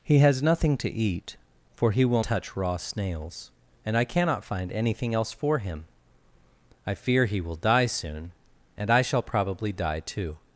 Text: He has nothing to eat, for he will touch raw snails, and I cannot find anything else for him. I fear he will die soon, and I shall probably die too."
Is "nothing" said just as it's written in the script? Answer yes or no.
yes